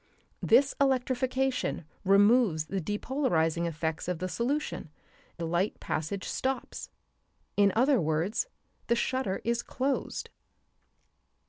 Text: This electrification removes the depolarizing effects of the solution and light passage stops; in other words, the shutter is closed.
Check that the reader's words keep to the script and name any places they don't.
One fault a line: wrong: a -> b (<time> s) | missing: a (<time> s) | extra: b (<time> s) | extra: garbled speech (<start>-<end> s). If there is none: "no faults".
missing: and (4.9 s)